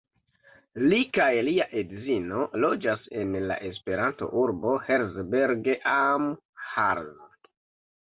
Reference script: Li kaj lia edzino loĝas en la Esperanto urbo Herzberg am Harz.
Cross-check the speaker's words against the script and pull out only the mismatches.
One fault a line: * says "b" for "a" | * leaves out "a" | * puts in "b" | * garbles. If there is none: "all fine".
all fine